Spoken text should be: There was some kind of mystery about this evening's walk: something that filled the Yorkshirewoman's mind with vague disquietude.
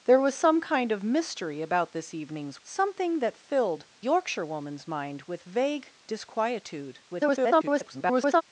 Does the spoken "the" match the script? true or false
false